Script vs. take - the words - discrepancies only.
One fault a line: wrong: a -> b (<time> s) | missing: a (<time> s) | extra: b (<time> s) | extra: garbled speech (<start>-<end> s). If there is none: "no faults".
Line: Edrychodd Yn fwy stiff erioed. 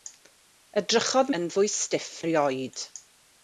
no faults